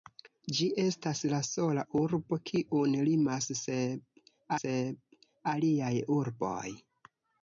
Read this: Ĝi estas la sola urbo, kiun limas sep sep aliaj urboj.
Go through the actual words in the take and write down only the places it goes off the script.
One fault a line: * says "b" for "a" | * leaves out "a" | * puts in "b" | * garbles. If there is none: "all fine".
all fine